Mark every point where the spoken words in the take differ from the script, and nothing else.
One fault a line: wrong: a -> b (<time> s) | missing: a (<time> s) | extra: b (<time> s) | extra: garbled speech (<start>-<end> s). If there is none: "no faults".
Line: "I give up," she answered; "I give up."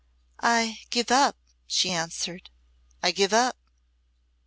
no faults